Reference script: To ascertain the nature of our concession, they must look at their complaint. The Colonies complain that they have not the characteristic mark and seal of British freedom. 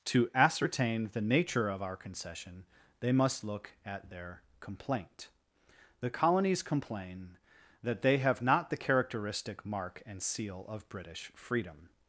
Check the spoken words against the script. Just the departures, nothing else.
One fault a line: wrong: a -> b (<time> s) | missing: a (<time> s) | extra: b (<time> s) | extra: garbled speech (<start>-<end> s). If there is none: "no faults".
no faults